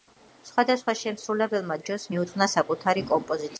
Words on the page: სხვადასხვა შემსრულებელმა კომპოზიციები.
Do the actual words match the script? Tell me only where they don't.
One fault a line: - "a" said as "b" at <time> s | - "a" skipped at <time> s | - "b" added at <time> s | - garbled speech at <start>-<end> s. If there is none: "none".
- "ჯოს მიუძღვნა საკუთარი" added at 1.9 s